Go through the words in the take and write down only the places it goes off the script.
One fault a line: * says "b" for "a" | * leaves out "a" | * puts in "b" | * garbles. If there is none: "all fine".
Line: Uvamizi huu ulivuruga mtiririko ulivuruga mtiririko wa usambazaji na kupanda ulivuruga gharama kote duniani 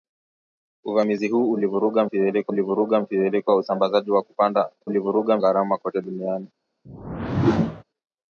all fine